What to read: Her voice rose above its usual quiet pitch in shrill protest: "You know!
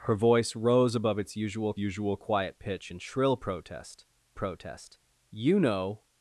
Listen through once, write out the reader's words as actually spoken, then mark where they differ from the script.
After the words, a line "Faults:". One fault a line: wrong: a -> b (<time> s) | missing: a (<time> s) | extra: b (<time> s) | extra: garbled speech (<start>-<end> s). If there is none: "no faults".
Her voice rose above its usual usual quiet pitch in shrill protest protest: "You know!
Faults:
extra: usual (1.8 s)
extra: protest (4.3 s)